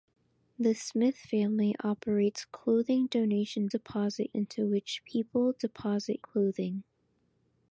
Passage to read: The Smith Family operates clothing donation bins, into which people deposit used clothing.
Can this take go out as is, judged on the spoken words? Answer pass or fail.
fail